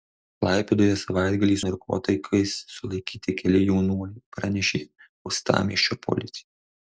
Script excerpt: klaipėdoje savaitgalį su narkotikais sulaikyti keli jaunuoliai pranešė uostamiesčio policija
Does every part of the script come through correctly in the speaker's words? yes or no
no